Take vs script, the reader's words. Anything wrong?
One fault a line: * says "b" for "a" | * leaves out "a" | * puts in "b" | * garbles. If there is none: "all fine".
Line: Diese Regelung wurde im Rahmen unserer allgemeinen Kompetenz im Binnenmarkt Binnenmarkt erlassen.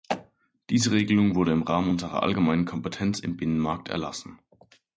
* leaves out "Binnenmarkt"